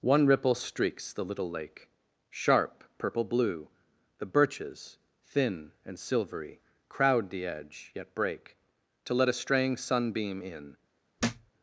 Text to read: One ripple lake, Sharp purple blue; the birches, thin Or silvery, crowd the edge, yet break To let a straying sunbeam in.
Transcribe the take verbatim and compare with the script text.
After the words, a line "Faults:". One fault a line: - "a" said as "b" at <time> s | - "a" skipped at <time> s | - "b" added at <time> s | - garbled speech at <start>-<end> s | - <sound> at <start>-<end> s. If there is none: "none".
One ripple streaks the little lake, Sharp purple blue; the birches, thin And silvery, crowd the edge, yet break To let a straying sunbeam in.
Faults:
- "streaks the little" added at 0.6 s
- "Or" said as "And" at 5.8 s
- thud at 11.2-11.5 s